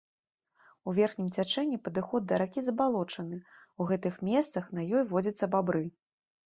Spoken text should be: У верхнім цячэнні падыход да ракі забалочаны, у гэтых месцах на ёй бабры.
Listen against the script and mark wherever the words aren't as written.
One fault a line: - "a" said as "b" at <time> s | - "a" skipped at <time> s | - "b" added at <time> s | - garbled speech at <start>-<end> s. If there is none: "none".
- "водзяцца" added at 5.1 s